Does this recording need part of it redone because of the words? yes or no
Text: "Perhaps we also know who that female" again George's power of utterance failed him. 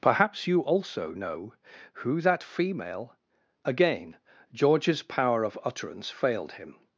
yes